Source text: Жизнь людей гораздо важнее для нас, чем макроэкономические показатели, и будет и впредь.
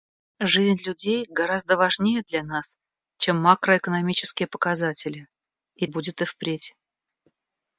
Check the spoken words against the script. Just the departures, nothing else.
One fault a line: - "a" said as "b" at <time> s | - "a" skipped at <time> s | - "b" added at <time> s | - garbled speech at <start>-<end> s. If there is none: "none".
none